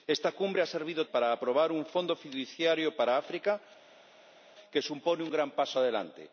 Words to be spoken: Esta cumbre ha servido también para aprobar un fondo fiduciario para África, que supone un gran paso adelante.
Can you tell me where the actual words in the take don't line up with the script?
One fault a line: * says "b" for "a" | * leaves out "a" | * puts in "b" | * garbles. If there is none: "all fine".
* leaves out "también"